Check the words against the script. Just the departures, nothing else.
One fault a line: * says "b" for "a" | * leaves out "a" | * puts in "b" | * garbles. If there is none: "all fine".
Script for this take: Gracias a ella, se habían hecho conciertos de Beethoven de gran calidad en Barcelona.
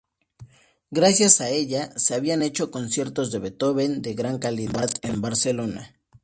all fine